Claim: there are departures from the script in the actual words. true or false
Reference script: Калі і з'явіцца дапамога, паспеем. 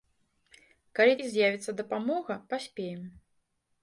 false